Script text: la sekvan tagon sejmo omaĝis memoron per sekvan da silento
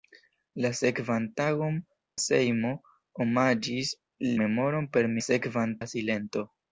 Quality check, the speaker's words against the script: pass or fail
pass